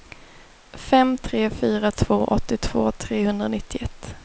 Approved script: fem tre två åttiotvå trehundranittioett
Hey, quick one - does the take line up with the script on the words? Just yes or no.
no